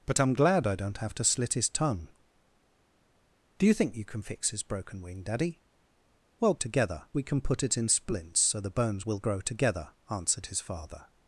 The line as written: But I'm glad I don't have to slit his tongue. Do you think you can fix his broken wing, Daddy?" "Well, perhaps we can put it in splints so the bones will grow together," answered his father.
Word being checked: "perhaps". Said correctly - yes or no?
no